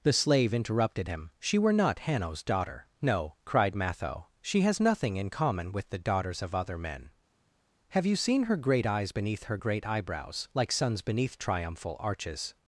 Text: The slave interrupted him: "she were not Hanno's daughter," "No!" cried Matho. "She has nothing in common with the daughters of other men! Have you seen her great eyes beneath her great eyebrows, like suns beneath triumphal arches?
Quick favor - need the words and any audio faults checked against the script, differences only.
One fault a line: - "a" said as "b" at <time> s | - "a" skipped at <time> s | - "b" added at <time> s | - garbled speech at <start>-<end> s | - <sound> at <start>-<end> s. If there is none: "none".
none